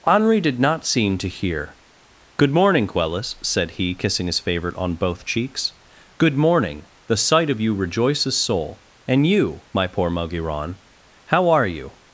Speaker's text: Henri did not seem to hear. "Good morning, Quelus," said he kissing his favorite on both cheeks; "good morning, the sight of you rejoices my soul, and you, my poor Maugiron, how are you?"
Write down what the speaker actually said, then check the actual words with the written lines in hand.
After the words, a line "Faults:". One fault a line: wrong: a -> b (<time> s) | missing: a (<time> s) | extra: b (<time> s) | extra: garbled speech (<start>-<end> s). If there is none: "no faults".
Henri did not seem to hear. "Good morning, Quelus," said he kissing his favorite on both cheeks; "good morning, the sight of you rejoices soul, and you, my poor Maugiron, how are you?"
Faults:
missing: my (8.4 s)